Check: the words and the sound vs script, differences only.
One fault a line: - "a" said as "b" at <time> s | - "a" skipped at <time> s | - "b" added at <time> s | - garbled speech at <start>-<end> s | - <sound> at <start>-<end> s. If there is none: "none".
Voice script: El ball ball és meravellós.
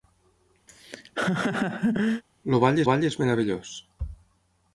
- laugh at 0.7-2.2 s